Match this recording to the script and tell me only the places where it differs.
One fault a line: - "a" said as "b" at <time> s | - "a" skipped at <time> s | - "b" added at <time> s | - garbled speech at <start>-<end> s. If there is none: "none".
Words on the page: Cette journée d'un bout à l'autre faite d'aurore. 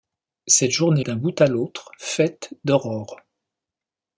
none